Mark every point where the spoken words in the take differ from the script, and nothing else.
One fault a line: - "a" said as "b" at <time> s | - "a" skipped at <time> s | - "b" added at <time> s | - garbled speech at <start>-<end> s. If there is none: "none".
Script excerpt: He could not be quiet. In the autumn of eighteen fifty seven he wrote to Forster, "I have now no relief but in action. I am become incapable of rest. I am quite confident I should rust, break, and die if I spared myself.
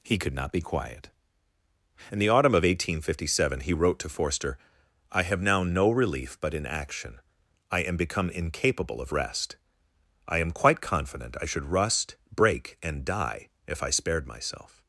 none